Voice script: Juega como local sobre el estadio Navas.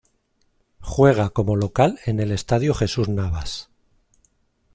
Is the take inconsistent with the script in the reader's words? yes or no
yes